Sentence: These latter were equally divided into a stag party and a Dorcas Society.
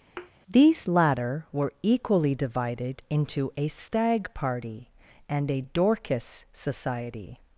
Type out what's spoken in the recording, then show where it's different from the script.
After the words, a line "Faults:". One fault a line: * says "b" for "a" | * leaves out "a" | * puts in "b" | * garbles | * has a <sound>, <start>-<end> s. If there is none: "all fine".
These latter were equally divided into a stag party and a Dorcas Society.
Faults:
* has a thud, 0.2-0.3 s